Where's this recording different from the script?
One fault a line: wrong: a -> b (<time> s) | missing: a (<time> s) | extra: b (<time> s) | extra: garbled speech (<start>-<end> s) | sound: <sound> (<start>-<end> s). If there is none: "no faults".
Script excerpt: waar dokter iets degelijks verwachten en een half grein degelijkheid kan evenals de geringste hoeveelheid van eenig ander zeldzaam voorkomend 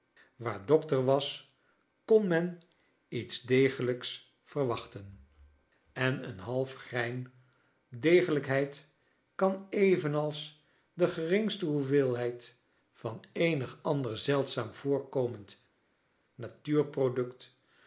extra: was kon men (1.1 s)